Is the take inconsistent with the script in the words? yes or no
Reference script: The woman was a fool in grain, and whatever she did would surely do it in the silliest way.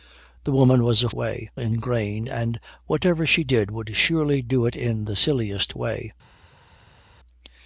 yes